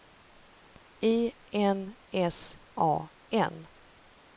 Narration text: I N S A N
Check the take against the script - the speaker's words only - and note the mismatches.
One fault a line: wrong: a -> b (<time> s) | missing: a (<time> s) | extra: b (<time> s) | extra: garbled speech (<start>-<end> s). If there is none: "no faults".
no faults